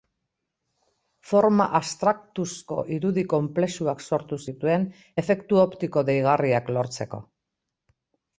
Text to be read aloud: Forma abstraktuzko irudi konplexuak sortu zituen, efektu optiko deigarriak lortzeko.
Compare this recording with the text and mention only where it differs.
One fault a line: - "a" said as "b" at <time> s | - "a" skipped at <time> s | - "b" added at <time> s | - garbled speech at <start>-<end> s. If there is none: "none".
none